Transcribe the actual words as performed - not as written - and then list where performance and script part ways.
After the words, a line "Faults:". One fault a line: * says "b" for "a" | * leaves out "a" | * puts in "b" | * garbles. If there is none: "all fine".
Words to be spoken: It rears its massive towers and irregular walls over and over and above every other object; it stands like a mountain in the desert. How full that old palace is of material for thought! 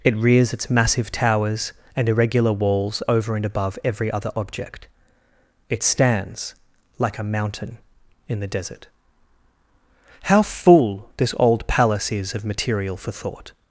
It rears its massive towers and irregular walls over and above every other object; it stands like a mountain in the desert. How full this old palace is of material for thought!
Faults:
* leaves out "over and"
* says "this" for "that"